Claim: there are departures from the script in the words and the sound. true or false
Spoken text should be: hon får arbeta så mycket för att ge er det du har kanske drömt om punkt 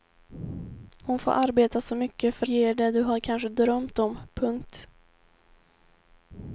true